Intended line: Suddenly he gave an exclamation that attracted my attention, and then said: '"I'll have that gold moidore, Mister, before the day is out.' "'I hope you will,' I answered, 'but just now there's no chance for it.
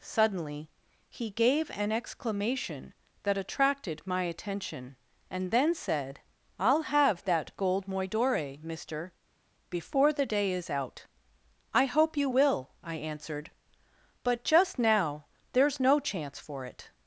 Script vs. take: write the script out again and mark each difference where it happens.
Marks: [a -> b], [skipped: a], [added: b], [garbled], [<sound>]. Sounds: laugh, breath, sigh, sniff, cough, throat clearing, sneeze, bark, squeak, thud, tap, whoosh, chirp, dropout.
Suddenly he gave an exclamation that attracted my attention, and then said: '"I'll have that gold moidore, Mister, before the day is out.' "'I hope you will,' I answered, 'but just now there's no chance for it.